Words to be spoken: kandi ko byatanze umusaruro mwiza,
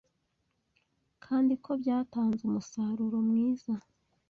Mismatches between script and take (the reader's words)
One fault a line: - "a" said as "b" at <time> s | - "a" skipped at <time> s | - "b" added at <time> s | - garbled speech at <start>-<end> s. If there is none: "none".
none